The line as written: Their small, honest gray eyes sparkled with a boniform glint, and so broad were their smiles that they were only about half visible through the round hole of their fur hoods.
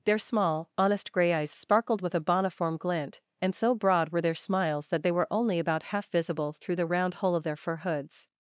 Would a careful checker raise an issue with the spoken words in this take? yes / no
no